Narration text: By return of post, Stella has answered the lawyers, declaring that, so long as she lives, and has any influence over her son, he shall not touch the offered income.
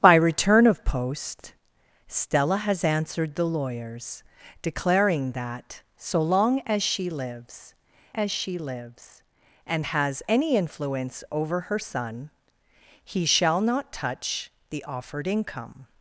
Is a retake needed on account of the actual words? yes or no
yes